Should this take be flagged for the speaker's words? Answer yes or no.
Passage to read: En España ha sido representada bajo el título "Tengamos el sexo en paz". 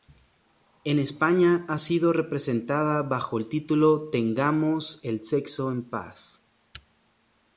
no